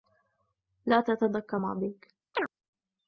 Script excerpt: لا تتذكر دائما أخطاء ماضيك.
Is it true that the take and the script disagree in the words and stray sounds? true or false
true